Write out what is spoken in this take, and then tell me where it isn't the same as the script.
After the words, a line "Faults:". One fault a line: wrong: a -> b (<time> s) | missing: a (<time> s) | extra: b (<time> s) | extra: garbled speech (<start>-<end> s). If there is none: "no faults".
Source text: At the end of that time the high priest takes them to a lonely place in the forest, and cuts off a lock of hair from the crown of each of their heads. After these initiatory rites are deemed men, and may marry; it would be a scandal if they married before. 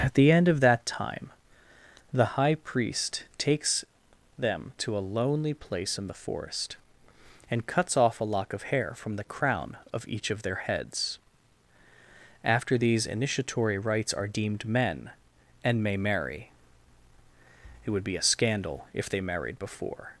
At the end of that time the high priest takes them to a lonely place in the forest, and cuts off a lock of hair from the crown of each of their heads. After these initiatory rites are deemed men, and may marry; it would be a scandal if they married before.
Faults:
no faults